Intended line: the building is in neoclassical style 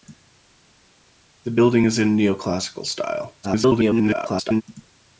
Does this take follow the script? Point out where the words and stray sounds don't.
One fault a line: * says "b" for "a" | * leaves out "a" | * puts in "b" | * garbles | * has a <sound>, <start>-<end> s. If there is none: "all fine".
* garbles